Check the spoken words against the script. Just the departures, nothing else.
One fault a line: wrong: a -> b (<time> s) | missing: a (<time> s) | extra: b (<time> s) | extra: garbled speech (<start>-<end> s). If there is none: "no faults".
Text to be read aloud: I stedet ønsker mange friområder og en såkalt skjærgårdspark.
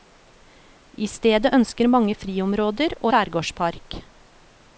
missing: en såkalt (3.1 s)